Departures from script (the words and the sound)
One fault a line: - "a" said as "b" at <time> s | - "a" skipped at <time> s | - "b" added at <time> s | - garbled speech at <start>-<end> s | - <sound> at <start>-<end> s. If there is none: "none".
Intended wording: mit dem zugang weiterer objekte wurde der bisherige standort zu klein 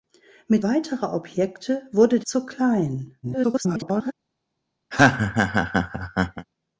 - "dem zugang" skipped at 0.7 s
- "der bisherige standort" skipped at 2.2 s
- garbled speech at 3.2-4.1 s
- laugh at 4.9-6.5 s